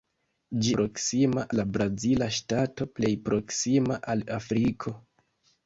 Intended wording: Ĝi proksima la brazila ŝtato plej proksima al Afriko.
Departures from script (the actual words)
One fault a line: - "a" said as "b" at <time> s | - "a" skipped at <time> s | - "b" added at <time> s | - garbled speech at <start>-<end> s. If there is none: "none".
none